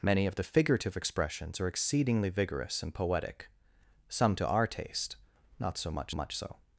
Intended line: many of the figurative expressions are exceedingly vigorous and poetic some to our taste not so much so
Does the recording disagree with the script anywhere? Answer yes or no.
yes